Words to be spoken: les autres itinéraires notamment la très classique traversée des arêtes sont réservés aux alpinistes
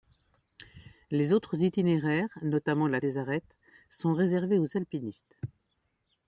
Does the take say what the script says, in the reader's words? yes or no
no